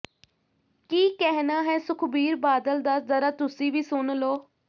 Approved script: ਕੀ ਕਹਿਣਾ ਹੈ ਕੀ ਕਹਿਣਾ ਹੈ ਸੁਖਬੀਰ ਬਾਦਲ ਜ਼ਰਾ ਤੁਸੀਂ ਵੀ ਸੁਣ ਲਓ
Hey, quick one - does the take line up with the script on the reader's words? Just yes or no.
no